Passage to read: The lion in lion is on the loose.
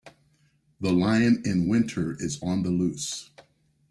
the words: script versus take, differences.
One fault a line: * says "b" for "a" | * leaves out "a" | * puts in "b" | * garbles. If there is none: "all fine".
* says "winter" for "lion"